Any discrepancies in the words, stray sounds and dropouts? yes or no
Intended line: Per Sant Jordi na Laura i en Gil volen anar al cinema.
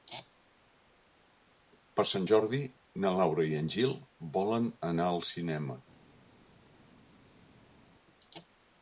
no